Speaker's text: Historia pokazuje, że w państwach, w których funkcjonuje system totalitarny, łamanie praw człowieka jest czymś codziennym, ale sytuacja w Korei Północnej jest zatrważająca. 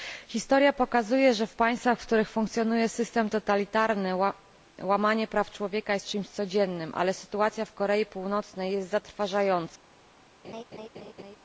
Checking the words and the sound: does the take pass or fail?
fail